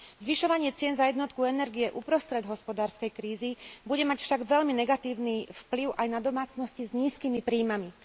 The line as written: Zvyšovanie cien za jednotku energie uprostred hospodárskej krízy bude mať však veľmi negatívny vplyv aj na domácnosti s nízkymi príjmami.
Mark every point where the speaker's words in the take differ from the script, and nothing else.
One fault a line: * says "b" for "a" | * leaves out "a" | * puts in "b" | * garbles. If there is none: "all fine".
all fine